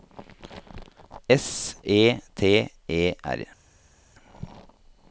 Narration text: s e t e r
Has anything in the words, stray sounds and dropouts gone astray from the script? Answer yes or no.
no